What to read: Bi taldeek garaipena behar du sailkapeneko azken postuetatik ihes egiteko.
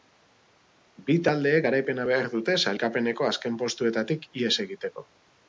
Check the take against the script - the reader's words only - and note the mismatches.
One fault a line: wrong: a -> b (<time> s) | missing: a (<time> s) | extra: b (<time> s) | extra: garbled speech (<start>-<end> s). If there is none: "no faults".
wrong: du -> dute (2.4 s)